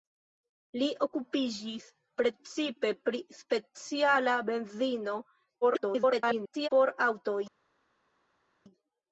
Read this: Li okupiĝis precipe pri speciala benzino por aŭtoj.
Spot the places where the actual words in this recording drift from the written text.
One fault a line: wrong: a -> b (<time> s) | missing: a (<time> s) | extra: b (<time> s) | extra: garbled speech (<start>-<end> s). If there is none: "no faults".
extra: garbled speech (5.6-6.7 s)